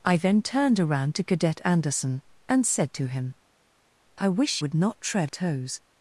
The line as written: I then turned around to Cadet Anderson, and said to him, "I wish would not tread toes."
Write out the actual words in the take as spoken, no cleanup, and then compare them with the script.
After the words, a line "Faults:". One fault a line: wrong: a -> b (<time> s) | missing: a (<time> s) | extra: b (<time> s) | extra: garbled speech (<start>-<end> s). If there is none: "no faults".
I then turned around to Cadet Anderson, and said to him, "I wish would not tread toes."
Faults:
no faults